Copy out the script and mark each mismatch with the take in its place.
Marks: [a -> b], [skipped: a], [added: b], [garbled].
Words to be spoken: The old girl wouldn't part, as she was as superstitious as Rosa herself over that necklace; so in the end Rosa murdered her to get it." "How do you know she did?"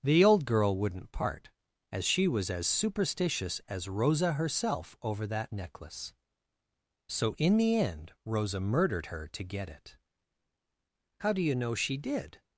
The old girl wouldn't part, as she was as superstitious as Rosa herself over that necklace; so in the end Rosa murdered her to get it." "How do you know she did?"